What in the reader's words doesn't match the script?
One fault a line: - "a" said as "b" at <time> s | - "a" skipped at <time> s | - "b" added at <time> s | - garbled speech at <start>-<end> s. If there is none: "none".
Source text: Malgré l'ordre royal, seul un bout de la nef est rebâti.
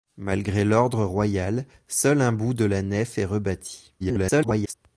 - garbled speech at 4.0-4.7 s